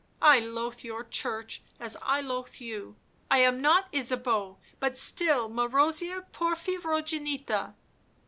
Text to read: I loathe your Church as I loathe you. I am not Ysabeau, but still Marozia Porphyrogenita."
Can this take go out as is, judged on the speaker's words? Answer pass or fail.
pass